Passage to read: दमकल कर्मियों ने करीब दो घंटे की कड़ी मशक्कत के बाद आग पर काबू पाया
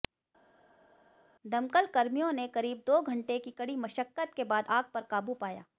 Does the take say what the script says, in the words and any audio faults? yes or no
yes